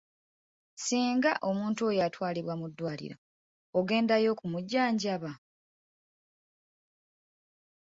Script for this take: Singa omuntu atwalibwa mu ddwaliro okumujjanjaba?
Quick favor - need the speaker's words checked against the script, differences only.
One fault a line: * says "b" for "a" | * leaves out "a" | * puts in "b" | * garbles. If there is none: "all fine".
* puts in "oyo"
* puts in "ogendayo"